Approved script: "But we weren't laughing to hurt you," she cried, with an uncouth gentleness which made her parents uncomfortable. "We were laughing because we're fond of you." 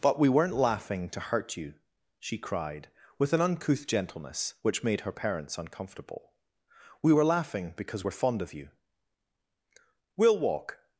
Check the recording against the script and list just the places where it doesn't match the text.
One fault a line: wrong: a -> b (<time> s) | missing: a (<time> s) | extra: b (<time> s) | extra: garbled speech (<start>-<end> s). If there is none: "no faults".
extra: We'll walk (10.2 s)